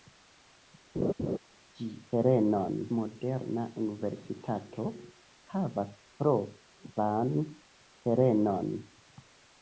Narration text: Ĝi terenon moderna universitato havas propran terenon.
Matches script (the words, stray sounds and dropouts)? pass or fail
fail